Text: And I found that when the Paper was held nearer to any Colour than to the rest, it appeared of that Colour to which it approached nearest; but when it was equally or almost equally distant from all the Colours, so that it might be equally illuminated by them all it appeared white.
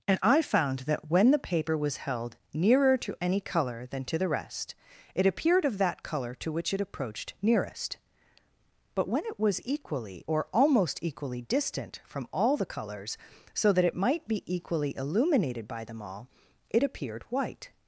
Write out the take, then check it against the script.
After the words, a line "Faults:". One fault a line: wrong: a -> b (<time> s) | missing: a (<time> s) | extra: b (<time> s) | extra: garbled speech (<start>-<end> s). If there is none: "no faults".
And I found that when the Paper was held nearer to any Colour than to the rest, it appeared of that Colour to which it approached nearest; but when it was equally or almost equally distant from all the Colours, so that it might be equally illuminated by them all it appeared white.
Faults:
no faults